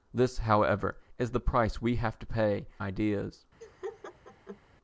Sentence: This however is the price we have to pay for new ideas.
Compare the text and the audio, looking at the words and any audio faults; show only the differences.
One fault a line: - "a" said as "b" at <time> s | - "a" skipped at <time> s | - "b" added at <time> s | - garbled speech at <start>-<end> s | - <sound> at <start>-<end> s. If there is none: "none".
- "for new" skipped at 2.7 s
- laugh at 3.6-4.6 s